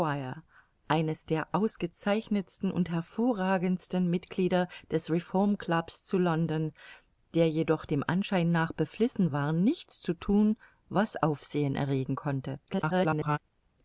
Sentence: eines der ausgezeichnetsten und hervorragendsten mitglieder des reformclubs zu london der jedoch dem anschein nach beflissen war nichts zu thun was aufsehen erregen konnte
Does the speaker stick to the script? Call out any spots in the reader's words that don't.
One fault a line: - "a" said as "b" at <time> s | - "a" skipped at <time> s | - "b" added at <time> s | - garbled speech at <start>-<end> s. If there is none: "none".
- garbled speech at 12.7-13.4 s